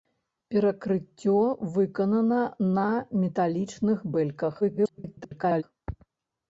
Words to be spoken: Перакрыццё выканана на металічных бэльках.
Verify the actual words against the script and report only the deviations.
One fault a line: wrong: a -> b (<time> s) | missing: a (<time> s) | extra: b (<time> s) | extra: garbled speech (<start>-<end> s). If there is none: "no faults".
extra: garbled speech (4.6-5.6 s)